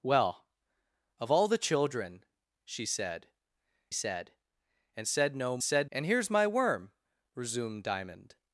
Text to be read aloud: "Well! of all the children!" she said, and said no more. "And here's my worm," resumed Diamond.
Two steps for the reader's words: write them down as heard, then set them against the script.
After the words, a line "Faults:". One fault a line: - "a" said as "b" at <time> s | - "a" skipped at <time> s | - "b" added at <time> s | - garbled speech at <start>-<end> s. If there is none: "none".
"Well! of all the children!" she said said, and said no said. "And here's my worm," resumed Diamond.
Faults:
- "said" added at 3.9 s
- "more" said as "said" at 5.6 s